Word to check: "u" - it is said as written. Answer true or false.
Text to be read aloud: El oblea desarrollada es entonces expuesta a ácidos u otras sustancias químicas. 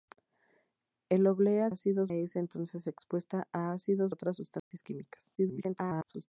false